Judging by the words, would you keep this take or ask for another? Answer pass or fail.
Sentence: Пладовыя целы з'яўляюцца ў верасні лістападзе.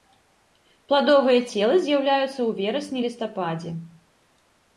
pass